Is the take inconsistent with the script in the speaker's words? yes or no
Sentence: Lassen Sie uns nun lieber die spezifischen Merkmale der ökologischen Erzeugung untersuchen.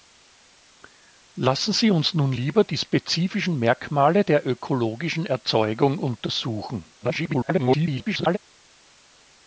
yes